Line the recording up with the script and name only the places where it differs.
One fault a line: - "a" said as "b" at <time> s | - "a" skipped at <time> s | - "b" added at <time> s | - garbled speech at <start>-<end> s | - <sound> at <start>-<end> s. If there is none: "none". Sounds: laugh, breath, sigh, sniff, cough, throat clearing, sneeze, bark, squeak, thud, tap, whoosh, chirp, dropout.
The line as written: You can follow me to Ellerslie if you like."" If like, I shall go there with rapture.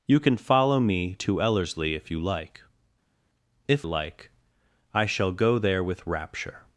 none